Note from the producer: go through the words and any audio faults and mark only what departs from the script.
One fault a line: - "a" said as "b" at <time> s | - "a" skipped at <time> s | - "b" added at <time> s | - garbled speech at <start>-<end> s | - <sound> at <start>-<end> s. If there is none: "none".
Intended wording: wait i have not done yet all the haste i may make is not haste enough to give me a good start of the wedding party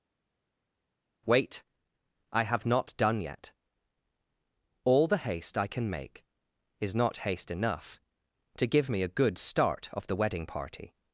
- "may" said as "can" at 5.7 s